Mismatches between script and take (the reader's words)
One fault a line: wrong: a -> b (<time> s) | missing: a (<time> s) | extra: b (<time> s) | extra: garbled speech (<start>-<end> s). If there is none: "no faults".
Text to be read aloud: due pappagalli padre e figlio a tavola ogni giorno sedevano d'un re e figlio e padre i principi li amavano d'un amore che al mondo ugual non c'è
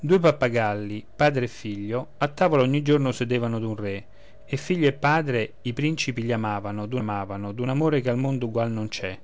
extra: amavano d'un (7.0 s)